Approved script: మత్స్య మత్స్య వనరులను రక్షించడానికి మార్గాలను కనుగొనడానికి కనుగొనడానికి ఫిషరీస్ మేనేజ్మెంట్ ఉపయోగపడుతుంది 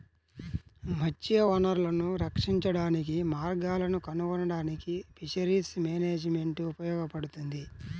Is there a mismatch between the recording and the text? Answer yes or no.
yes